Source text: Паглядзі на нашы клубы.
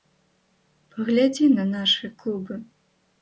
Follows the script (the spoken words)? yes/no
yes